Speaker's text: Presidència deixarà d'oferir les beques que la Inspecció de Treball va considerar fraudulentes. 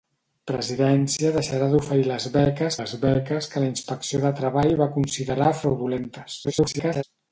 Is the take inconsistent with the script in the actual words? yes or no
yes